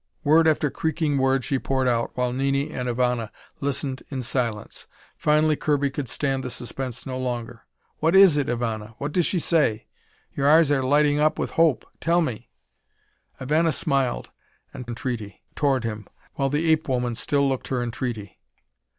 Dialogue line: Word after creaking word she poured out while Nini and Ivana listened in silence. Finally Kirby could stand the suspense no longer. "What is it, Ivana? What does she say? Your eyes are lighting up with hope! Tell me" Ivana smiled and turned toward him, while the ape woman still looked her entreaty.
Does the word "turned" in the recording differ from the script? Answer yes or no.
yes